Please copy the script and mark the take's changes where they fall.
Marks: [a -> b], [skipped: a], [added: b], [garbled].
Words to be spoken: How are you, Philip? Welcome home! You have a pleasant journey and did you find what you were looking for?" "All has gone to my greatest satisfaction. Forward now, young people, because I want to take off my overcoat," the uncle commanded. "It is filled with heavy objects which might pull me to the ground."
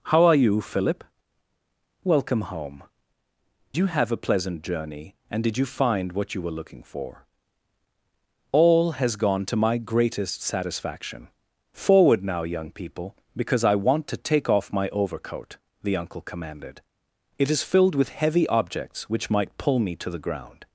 How are you, Philip? Welcome home! You have a pleasant journey and did you find what you were looking for?" "All has gone to my greatest satisfaction. Forward now, young people, because I want to take off my overcoat," the uncle commanded. "It is filled with heavy objects which might pull me to the ground."